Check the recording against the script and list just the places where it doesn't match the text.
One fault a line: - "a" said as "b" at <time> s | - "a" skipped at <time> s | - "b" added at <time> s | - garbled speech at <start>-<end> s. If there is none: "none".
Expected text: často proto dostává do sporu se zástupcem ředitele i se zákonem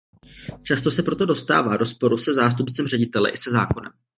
- "se" added at 0.9 s